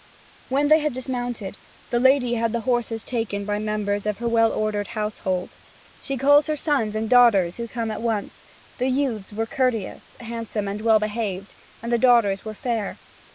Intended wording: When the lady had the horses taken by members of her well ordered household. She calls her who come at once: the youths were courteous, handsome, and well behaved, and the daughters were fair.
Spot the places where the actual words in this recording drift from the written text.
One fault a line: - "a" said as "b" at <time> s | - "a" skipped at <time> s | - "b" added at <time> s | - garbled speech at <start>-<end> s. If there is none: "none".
- "they had dismounted" added at 0.7 s
- "sons and daughters" added at 6.5 s